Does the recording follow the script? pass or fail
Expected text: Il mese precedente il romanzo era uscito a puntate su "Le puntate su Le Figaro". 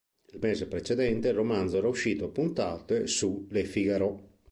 fail